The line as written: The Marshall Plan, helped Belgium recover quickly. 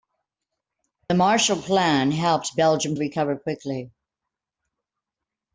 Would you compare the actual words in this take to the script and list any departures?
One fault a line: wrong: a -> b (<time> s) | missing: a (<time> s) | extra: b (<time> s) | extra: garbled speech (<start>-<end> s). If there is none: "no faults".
no faults